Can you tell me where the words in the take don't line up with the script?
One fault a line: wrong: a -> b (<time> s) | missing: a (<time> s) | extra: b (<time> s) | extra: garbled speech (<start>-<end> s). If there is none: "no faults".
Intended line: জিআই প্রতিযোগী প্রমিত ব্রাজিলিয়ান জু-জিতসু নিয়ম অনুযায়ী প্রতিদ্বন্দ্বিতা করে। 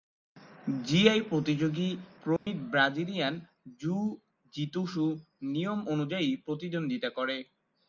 no faults